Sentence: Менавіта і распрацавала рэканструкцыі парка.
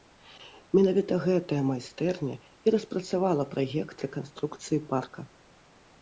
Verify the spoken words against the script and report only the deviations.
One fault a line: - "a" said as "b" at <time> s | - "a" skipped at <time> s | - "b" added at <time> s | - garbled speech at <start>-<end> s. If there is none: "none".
- "гэтая майстэрня" added at 1.2 s
- "праект" added at 3.5 s